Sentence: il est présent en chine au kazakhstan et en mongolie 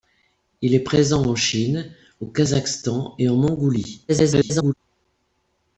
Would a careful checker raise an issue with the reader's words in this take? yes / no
yes